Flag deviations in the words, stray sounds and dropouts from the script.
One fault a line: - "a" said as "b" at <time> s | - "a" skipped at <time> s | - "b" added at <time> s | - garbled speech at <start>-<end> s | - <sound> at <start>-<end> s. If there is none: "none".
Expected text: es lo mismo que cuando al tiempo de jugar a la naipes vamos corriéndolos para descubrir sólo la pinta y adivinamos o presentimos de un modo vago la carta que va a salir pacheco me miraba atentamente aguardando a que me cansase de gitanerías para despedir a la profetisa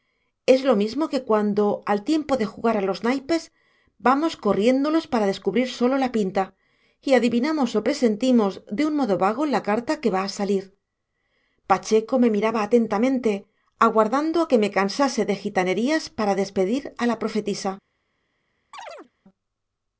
- "la" said as "los" at 2.9 s
- chirp at 18.7-19.1 s